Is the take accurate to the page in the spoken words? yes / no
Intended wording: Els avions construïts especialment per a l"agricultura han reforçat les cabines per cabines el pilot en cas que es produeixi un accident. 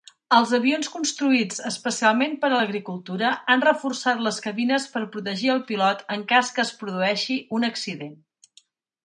no